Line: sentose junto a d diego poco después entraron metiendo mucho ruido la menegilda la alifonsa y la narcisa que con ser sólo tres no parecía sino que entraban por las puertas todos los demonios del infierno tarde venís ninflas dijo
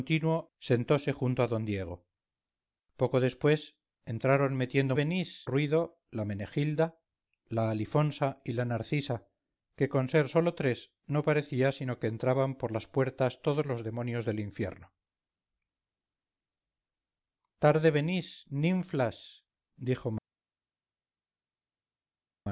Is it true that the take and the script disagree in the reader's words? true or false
true